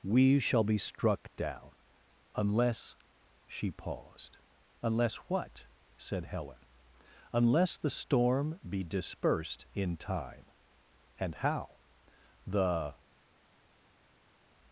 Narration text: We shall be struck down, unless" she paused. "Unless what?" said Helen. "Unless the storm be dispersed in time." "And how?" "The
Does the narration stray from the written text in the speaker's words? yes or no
no